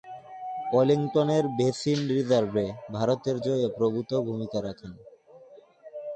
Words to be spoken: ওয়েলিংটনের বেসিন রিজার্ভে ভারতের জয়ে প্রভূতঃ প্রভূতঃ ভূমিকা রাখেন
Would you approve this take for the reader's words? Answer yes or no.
no